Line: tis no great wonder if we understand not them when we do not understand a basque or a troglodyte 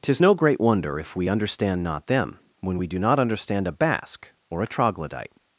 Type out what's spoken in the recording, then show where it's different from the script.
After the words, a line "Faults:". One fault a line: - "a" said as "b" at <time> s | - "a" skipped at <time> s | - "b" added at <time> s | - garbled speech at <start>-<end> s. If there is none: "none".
tis no great wonder if we understand not them when we do not understand a basque or a troglodyte
Faults:
none